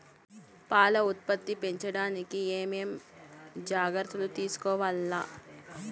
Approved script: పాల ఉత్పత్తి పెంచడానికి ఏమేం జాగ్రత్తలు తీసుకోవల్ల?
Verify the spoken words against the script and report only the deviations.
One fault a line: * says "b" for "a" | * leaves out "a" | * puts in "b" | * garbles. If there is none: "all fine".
all fine